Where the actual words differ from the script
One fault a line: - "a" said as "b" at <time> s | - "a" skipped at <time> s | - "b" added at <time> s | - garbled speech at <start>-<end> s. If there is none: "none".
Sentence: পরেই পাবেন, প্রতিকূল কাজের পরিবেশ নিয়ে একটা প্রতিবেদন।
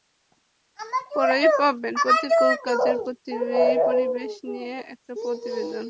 none